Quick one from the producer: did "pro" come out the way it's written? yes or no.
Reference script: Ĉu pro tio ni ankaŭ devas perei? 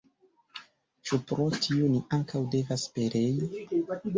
yes